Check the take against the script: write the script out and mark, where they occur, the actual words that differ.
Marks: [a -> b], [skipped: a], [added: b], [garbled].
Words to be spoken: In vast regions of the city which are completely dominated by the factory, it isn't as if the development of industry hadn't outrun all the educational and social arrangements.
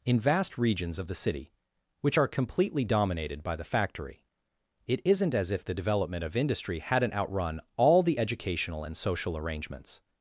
In vast regions of the city which are completely dominated by the factory, it isn't as if the development of industry hadn't outrun all the educational and social arrangements.